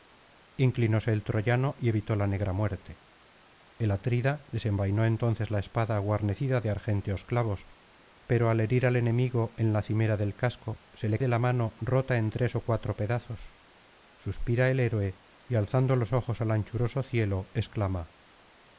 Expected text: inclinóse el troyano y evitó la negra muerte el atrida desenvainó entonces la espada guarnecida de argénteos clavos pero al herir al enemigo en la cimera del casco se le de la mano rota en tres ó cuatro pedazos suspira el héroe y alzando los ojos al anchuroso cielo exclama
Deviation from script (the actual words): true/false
false